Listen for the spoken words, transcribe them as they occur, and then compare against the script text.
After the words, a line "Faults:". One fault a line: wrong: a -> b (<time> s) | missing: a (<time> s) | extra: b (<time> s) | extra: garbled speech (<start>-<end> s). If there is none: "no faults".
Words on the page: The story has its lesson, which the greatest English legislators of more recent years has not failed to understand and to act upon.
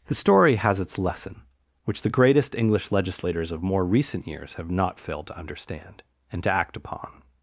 The story has its lesson, which the greatest English legislators of more recent years have not failed to understand and to act upon.
Faults:
wrong: has -> have (4.5 s)